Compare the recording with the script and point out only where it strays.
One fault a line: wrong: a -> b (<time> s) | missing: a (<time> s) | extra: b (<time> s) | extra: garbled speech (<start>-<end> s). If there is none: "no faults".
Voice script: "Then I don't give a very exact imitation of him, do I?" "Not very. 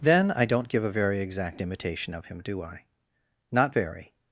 no faults